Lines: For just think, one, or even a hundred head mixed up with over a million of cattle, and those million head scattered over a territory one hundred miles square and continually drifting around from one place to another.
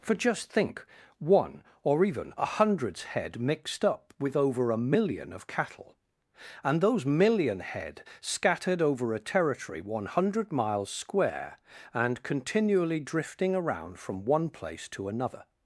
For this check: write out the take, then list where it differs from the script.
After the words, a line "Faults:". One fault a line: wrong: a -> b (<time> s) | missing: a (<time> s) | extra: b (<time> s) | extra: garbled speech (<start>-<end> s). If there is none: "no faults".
For just think, one, or even a hundreds head mixed up with over a million of cattle, and those million head scattered over a territory one hundred miles square and continually drifting around from one place to another.
Faults:
wrong: hundred -> hundreds (2.5 s)